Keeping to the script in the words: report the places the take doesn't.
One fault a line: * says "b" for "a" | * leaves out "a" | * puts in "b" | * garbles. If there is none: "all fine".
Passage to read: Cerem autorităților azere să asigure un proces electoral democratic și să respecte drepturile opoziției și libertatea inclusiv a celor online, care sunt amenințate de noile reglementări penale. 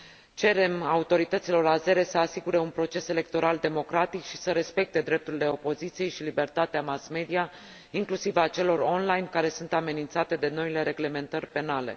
* puts in "mass media"